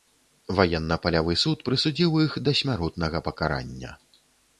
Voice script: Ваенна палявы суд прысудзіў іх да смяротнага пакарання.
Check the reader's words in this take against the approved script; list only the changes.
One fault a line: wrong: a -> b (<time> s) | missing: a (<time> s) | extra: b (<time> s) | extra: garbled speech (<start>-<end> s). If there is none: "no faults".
no faults